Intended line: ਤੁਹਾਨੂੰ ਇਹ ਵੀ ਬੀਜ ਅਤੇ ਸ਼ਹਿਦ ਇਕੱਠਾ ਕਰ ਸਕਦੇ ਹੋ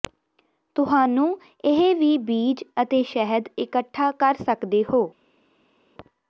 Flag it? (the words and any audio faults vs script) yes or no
no